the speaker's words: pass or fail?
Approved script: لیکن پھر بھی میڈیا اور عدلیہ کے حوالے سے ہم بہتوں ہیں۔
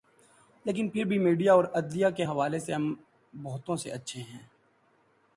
fail